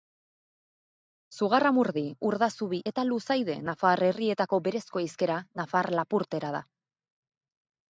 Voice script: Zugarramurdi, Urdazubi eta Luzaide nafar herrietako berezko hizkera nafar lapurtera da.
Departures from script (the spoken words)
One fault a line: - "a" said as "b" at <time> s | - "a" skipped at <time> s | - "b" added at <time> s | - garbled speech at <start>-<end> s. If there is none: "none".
none